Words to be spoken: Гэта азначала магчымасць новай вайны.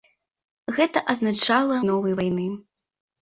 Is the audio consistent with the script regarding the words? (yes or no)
no